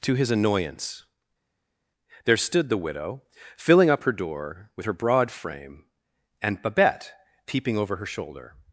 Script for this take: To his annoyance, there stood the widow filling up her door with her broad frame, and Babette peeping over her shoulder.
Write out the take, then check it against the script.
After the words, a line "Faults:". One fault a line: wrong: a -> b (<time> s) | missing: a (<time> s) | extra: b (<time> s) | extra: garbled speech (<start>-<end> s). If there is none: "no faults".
To his annoyance, there stood the widow filling up her door with her broad frame, and Babette peeping over her shoulder.
Faults:
no faults